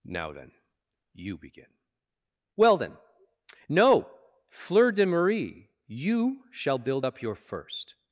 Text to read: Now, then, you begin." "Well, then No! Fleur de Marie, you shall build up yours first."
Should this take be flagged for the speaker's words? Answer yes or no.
yes